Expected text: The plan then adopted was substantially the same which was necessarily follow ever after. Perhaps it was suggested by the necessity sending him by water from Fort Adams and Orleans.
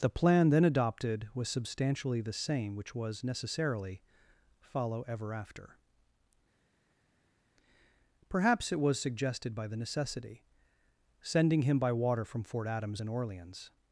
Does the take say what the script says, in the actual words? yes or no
yes